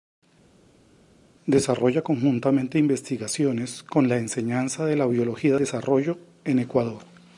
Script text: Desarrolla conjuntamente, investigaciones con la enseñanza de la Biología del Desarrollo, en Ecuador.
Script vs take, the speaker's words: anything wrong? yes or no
yes